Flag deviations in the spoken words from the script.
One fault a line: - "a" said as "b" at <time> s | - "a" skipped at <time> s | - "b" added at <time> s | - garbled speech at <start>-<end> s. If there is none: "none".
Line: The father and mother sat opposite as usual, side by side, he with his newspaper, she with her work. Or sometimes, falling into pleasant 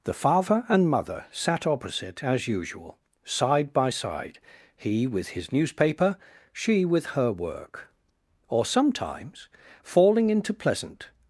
none